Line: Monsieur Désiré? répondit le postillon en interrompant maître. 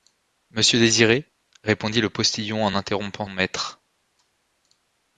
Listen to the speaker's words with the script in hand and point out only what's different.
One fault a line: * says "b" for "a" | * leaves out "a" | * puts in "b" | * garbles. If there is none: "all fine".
all fine